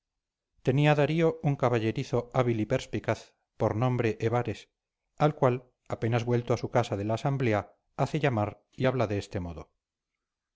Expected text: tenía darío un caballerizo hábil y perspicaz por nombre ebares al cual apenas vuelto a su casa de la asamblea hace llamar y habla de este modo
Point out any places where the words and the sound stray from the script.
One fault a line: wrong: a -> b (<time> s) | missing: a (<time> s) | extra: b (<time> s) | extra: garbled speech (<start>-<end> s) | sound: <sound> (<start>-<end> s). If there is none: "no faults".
no faults